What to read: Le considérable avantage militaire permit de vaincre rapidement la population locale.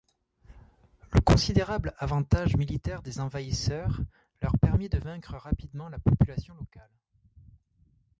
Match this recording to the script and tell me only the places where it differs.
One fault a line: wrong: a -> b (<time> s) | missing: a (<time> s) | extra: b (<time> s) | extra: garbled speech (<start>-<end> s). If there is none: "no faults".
extra: des envahisseurs leur (3.0 s)